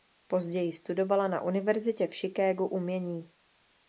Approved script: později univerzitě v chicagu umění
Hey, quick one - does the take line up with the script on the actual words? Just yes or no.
no